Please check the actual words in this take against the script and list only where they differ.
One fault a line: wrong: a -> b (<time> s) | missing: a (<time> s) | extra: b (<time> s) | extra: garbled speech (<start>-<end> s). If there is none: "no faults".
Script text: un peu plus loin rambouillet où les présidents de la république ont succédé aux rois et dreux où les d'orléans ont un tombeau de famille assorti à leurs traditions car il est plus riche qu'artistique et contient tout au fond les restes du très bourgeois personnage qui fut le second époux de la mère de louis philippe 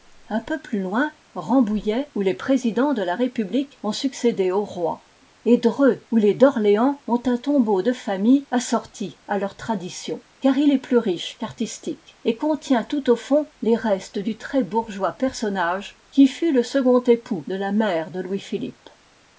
no faults